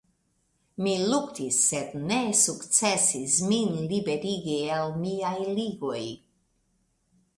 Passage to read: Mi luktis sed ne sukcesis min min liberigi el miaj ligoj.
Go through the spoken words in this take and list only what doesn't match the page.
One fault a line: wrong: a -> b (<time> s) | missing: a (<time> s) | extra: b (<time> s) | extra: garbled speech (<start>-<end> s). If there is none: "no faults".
missing: min (3.8 s)